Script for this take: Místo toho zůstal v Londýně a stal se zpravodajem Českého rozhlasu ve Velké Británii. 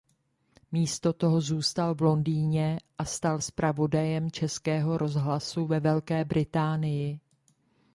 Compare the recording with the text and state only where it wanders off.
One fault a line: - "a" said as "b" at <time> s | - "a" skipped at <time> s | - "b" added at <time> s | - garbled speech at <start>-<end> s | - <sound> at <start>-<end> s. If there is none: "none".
- "se" skipped at 3.4 s